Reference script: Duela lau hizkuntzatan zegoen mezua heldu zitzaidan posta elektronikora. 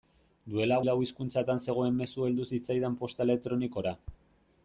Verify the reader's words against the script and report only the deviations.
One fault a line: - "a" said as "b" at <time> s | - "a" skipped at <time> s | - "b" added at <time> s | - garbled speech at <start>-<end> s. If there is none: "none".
none